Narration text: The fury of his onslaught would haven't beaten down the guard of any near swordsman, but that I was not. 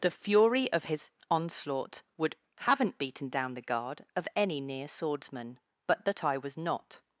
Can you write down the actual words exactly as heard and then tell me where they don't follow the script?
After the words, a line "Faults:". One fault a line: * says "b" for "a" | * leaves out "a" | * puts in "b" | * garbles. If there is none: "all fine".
The fury of his onslaught would haven't beaten down the guard of any near swordsman, but that I was not.
Faults:
all fine